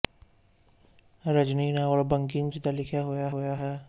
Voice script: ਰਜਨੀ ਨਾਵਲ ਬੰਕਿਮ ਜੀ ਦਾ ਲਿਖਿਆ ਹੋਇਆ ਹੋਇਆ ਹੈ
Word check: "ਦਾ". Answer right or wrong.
right